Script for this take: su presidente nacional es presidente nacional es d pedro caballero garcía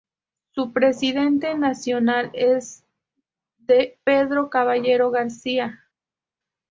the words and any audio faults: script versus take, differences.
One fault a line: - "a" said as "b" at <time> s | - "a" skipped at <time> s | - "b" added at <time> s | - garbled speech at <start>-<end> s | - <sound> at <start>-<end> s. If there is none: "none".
- "presidente nacional es" skipped at 2.9 s